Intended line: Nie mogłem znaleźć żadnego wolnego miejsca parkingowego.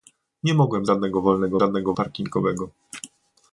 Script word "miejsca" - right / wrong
wrong